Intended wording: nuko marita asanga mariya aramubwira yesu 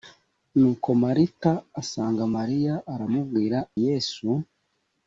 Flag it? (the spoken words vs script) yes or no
no